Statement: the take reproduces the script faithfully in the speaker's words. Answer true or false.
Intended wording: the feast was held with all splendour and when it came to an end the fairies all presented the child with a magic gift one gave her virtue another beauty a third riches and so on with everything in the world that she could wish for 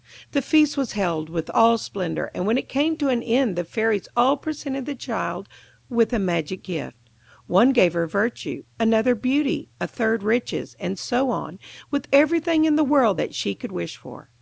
true